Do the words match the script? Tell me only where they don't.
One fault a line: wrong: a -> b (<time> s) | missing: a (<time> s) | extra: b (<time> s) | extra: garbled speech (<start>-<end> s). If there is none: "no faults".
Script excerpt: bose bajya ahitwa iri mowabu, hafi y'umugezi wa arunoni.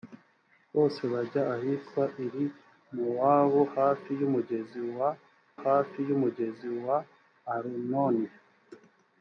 extra: hafi y'umugezi wa (5.6 s)